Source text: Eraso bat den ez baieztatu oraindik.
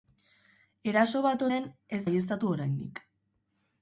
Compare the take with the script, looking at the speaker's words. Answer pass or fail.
pass